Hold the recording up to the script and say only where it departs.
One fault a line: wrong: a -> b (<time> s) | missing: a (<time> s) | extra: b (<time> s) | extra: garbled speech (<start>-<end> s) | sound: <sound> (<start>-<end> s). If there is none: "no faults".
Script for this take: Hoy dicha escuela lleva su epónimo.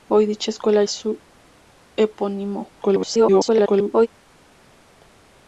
missing: lleva (0.8 s)
extra: garbled speech (2.8-4.1 s)